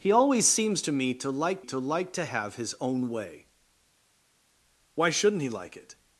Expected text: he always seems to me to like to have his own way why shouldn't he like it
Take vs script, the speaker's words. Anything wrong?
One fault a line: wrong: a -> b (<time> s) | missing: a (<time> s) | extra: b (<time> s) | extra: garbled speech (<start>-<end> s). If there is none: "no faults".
extra: like to (1.8 s)